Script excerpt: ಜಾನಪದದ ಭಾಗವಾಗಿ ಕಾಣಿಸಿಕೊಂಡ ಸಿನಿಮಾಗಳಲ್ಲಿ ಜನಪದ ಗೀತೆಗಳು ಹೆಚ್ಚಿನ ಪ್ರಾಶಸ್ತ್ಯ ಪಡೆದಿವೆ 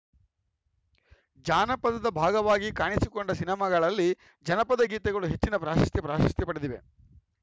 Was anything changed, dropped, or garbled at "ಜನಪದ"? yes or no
no